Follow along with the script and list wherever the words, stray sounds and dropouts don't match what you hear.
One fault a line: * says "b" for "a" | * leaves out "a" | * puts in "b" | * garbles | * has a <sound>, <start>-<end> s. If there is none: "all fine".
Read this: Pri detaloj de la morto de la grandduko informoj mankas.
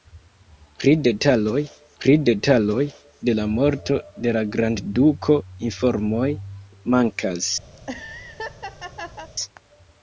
* puts in "pri detaloj"
* has a laugh, 7.8-9.3 s